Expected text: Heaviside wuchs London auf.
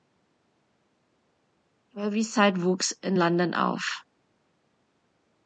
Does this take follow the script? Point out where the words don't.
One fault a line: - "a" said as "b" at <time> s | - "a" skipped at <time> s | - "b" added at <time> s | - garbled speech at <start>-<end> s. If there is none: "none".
- "in" added at 3.0 s